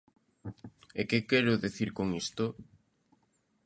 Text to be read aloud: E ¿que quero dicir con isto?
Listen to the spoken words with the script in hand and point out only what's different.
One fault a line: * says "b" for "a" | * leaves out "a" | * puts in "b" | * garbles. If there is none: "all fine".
all fine